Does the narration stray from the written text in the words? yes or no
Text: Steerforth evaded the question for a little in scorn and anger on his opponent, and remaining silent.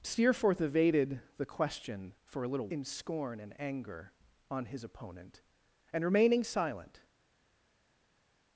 no